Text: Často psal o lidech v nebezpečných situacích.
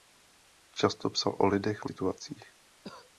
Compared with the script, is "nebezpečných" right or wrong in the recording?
wrong